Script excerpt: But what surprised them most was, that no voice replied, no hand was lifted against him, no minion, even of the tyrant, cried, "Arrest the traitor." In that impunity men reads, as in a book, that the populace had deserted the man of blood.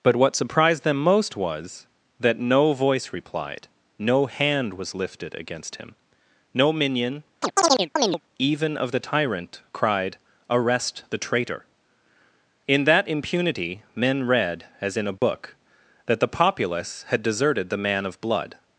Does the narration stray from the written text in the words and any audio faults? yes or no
yes